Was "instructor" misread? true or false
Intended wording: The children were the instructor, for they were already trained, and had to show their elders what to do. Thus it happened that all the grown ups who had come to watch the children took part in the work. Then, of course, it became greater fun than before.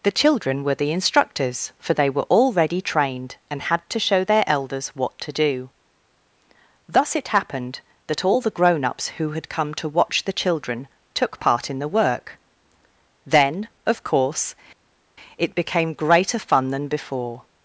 true